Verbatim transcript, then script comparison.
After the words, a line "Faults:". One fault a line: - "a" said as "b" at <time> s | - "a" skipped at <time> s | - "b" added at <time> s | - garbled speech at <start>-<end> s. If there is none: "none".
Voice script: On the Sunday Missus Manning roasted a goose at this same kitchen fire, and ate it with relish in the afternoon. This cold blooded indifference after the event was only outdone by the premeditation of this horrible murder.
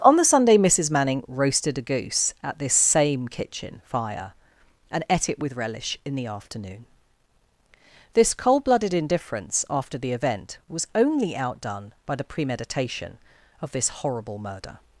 On the Sunday Missus Manning roasted a goose at this same kitchen fire, and ate it with relish in the afternoon. This cold blooded indifference after the event was only outdone by the premeditation of this horrible murder.
Faults:
none